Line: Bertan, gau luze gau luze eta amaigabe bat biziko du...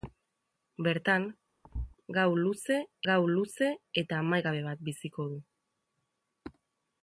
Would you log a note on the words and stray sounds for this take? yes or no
yes